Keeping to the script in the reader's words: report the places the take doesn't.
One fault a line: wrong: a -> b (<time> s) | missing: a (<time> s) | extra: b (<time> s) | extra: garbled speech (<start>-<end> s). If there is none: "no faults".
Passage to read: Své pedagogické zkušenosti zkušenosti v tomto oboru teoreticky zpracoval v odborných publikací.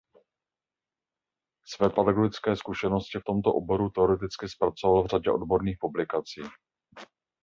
missing: zkušenosti (3.2 s)
extra: řadě (5.1 s)